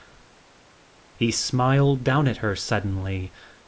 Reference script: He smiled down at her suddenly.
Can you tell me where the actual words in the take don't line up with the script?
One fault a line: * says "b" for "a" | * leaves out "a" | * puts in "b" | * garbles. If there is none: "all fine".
all fine